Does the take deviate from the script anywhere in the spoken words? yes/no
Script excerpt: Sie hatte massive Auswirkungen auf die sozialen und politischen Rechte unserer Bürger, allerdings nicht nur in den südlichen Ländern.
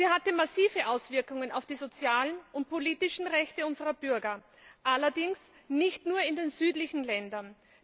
no